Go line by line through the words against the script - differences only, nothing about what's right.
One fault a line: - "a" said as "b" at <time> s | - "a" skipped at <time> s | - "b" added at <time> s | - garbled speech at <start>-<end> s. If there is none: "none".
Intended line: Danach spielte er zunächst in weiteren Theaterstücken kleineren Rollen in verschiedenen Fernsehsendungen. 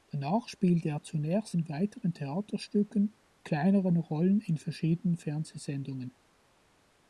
none